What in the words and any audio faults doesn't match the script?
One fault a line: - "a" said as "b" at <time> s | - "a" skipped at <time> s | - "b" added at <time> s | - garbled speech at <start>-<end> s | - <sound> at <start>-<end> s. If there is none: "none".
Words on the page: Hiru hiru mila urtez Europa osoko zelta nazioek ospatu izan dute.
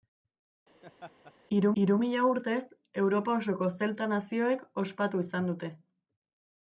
- laugh at 0.8-1.3 s